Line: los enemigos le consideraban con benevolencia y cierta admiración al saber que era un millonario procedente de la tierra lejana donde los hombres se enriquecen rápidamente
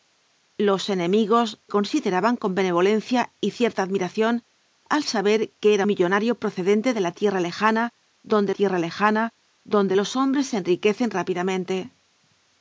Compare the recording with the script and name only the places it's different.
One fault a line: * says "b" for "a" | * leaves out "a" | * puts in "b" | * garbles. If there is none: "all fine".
* leaves out "le"
* leaves out "un"
* puts in "tierra lejana donde"